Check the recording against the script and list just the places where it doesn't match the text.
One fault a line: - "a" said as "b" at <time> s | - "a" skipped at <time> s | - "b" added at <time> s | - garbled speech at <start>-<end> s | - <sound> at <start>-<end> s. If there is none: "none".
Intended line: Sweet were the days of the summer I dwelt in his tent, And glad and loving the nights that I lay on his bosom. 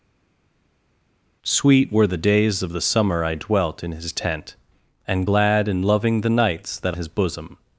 - "I lay on" skipped at 7.0 s